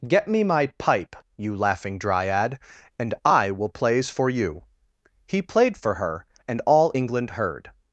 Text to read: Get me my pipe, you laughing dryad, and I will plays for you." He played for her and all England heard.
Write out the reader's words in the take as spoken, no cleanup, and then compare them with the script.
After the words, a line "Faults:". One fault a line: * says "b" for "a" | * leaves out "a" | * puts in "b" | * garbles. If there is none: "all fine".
Get me my pipe, you laughing dryad, and I will plays for you." He played for her and all England heard.
Faults:
all fine